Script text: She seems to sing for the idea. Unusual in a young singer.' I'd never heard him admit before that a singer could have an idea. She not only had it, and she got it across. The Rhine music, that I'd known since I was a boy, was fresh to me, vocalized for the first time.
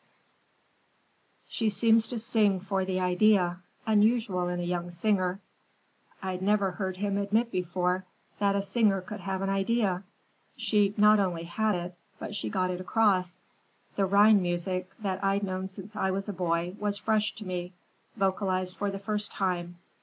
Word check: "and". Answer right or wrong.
wrong